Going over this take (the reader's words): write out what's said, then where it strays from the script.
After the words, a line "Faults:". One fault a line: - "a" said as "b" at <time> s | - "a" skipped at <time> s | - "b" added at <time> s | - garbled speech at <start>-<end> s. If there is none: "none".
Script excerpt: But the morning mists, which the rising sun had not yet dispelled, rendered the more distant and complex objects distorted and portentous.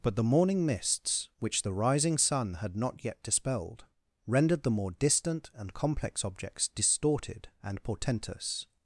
But the morning mists, which the rising sun had not yet dispelled, rendered the more distant and complex objects distorted and portentous.
Faults:
none